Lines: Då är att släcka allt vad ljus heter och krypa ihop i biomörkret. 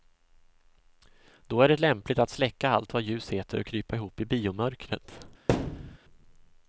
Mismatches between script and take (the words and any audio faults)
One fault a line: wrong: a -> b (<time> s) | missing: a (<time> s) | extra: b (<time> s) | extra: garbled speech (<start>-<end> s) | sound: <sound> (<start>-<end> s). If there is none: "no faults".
extra: det lämpligt (1.7 s)
sound: thud (5.5-6.0 s)